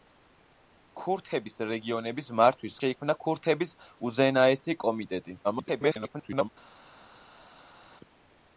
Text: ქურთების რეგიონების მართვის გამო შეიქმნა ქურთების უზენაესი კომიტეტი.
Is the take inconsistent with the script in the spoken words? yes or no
yes